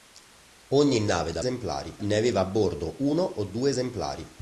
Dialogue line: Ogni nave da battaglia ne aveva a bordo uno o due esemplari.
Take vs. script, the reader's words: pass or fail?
fail